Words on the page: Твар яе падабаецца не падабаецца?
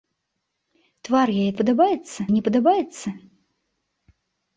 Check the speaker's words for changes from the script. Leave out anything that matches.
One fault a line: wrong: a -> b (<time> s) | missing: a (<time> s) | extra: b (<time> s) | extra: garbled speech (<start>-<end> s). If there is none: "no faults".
no faults